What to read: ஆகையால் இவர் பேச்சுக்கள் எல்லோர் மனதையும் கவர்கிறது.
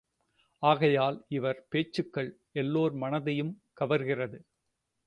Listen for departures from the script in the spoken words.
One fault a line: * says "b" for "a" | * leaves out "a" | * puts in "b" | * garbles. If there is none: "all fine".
all fine